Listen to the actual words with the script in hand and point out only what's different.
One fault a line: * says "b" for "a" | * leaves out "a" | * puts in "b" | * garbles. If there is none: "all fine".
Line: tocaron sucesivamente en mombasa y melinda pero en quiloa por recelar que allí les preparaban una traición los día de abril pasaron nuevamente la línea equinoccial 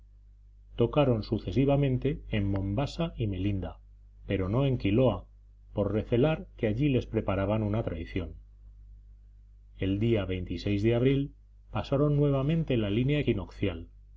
* puts in "no"
* says "el" for "los"